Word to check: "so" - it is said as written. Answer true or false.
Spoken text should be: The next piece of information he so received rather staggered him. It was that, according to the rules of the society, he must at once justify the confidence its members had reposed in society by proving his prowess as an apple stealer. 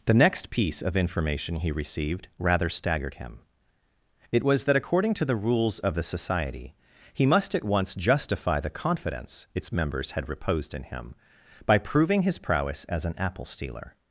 false